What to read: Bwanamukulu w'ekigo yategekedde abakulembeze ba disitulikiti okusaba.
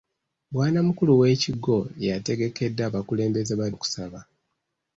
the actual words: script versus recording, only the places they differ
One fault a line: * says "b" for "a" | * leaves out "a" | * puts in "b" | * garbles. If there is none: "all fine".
* leaves out "disitulikiti"